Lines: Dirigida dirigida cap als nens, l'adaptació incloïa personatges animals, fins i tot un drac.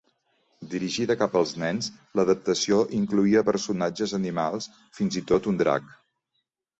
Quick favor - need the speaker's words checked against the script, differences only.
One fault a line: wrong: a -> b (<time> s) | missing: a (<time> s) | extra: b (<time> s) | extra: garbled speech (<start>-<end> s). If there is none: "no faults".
missing: dirigida (1.1 s)